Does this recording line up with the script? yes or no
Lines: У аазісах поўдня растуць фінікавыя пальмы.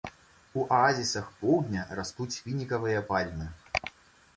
yes